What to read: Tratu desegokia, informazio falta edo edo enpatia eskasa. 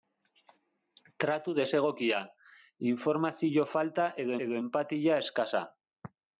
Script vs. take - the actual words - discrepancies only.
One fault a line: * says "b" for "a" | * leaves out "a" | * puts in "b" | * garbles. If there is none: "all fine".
all fine